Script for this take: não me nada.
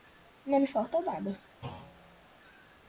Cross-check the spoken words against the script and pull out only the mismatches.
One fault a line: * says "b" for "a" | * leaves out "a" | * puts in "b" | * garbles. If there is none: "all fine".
* puts in "falta"